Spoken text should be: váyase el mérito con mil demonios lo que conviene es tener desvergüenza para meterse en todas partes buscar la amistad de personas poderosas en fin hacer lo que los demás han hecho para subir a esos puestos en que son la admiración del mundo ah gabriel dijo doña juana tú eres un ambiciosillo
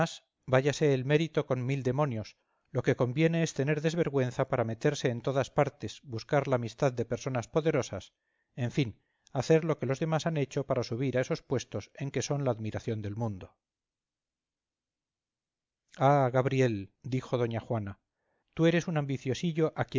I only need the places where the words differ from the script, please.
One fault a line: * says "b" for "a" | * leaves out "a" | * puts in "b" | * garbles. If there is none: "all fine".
all fine